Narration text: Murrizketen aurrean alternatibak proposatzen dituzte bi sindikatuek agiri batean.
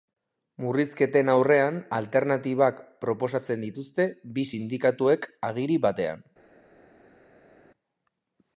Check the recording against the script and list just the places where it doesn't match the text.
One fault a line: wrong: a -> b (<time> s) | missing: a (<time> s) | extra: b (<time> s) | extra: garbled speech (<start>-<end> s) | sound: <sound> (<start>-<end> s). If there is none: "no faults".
no faults